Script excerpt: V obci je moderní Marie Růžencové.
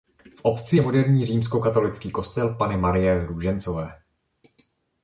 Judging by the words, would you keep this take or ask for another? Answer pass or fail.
fail